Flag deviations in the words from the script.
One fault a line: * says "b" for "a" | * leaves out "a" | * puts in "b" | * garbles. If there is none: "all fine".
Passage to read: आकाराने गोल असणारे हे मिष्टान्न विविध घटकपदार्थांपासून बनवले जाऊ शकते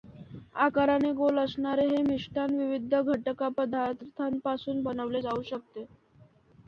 all fine